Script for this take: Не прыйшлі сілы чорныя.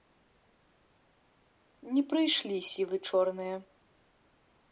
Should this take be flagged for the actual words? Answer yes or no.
no